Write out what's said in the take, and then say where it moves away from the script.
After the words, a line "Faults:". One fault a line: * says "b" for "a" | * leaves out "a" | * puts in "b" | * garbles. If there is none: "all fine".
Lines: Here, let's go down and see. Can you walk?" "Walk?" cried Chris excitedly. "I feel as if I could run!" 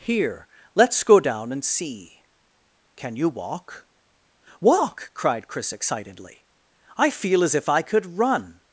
Here, let's go down and see. Can you walk?" "Walk?" cried Chris excitedly. "I feel as if I could run!"
Faults:
all fine